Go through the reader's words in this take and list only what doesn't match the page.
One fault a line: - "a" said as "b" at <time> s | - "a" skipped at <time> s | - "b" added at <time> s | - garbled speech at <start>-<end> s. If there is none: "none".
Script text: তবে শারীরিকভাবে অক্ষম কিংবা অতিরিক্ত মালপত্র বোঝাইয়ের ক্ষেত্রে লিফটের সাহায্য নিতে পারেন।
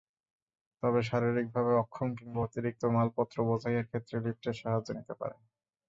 none